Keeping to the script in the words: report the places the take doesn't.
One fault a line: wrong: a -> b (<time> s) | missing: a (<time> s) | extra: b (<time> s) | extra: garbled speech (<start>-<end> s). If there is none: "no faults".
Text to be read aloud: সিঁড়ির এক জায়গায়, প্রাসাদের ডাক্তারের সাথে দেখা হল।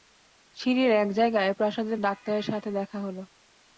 no faults